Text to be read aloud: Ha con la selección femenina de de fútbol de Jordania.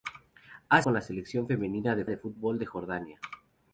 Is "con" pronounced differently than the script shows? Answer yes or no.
no